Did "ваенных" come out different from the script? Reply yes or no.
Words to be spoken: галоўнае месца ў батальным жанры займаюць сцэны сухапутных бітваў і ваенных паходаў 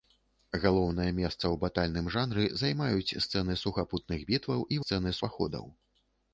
yes